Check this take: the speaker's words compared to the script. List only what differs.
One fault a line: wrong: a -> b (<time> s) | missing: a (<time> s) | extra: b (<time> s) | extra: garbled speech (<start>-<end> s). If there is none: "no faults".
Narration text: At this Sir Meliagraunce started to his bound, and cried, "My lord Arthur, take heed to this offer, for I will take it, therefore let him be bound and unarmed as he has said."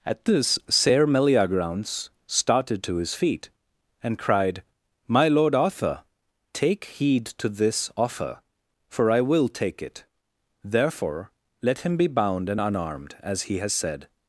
wrong: bound -> feet (3.1 s)